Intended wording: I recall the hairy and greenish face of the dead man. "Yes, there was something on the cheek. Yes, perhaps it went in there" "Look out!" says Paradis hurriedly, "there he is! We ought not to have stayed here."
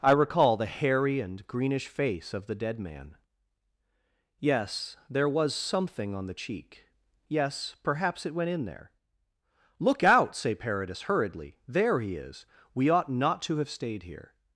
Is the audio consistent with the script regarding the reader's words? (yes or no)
no